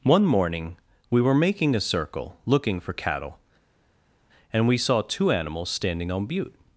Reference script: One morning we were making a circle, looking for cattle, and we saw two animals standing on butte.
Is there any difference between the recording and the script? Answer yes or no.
no